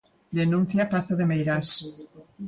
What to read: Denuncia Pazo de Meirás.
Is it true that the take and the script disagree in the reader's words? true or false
false